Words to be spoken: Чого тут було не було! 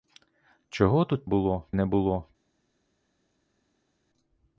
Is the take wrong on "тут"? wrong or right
right